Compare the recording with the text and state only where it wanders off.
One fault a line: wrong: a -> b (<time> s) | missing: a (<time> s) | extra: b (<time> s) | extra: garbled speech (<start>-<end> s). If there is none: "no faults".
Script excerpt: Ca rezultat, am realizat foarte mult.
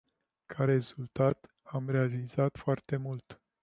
no faults